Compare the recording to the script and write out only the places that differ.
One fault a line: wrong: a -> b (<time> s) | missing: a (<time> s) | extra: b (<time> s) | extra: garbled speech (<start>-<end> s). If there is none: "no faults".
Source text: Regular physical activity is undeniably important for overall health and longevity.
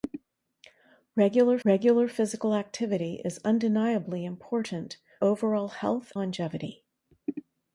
extra: regular (1.6 s)
missing: for (5.0 s)
missing: and (6.1 s)